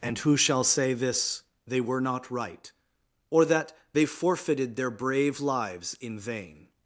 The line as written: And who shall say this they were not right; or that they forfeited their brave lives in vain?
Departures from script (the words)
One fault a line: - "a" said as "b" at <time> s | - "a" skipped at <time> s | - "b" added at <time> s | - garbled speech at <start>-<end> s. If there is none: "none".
none